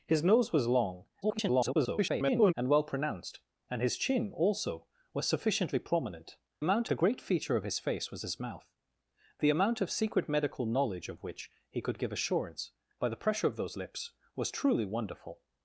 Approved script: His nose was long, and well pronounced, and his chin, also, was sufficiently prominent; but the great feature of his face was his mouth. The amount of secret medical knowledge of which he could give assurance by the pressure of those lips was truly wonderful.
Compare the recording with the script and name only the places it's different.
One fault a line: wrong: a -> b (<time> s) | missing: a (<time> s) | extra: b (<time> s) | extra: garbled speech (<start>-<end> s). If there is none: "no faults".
extra: garbled speech (1.2-2.5 s)
wrong: but -> amount (6.6 s)